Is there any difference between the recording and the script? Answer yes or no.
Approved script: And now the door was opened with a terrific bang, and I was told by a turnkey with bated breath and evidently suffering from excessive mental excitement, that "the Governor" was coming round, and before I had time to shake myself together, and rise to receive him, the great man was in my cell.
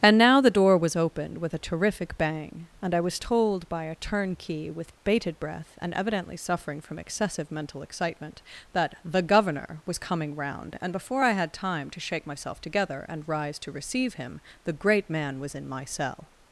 no